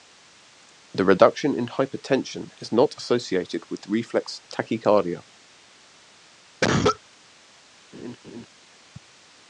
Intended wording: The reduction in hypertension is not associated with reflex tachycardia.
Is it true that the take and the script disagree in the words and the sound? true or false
true